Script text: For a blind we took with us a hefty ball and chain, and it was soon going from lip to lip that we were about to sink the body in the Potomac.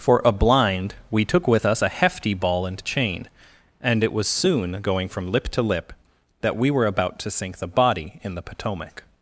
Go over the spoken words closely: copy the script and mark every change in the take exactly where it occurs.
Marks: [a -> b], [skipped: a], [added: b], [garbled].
For a blind we took with us a hefty ball and chain, and it was soon going from lip to lip that we were about to sink the body in the Potomac.